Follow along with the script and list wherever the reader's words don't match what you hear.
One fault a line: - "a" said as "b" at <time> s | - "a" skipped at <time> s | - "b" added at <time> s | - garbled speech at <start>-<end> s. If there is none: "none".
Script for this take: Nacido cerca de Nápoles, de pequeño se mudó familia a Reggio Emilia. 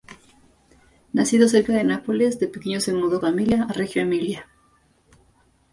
none